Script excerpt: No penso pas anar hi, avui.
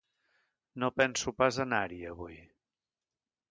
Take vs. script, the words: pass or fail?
pass